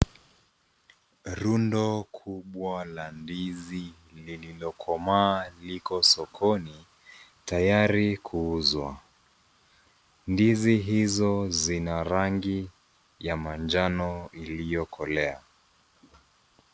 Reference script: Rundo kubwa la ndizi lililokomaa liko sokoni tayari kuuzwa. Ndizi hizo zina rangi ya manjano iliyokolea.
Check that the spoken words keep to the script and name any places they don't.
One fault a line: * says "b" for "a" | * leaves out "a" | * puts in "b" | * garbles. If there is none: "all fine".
all fine